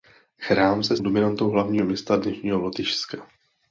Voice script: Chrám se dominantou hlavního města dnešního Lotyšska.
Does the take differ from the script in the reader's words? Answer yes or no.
no